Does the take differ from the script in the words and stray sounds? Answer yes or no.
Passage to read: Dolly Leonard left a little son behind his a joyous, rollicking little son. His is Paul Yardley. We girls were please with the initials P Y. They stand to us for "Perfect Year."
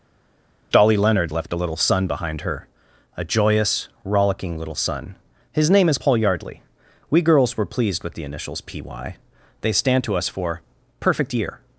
yes